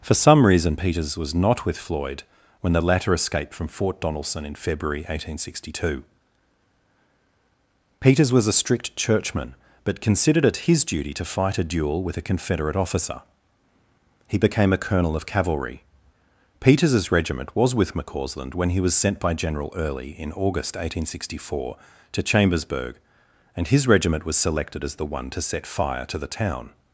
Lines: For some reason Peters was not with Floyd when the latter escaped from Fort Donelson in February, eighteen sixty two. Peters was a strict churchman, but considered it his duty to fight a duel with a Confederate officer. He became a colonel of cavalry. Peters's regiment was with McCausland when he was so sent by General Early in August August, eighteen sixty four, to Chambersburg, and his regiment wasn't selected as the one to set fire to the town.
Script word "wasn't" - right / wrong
wrong